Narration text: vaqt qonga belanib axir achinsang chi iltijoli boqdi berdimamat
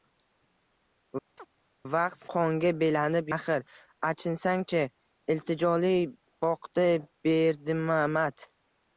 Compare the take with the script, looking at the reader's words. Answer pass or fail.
pass